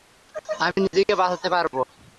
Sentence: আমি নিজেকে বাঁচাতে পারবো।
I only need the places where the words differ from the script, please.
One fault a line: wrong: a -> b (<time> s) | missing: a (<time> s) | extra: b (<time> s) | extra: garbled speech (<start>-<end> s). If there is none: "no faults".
no faults